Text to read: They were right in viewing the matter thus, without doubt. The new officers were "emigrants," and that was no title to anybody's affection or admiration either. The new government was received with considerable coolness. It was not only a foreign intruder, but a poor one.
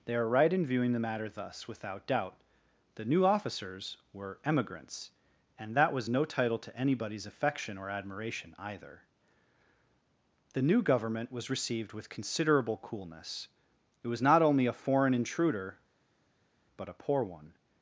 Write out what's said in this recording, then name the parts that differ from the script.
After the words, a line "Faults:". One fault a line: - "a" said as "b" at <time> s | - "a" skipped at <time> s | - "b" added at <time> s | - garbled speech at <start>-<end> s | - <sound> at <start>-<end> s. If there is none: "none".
They are right in viewing the matter thus, without doubt. The new officers were "emigrants," and that was no title to anybody's affection or admiration either. The new government was received with considerable coolness. It was not only a foreign intruder, but a poor one.
Faults:
- "were" said as "are" at 0.1 s